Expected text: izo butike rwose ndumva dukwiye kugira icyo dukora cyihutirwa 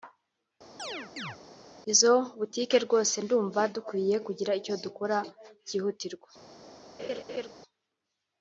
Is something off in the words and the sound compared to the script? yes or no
yes